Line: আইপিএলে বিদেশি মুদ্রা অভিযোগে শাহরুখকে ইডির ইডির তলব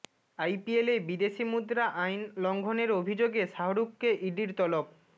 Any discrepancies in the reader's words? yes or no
yes